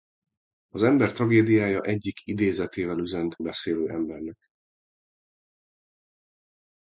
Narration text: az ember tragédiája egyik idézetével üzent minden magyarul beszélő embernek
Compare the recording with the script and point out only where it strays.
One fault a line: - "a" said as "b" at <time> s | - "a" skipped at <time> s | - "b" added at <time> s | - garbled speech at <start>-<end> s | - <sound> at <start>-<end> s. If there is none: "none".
- "minden magyarul" skipped at 3.4 s